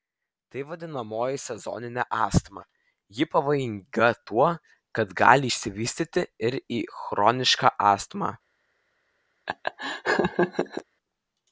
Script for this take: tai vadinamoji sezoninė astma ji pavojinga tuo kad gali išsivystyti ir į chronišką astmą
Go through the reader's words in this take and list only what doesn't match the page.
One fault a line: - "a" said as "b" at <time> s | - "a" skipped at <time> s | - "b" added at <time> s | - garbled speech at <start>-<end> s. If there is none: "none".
none